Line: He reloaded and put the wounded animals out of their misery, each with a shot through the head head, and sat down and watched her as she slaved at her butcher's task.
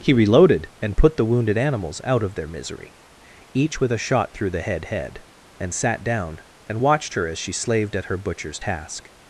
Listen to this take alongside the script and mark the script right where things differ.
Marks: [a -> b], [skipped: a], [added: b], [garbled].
He reloaded and put the wounded animals out of their misery, each with a shot through the head head, and sat down and watched her as she slaved at her butcher's task.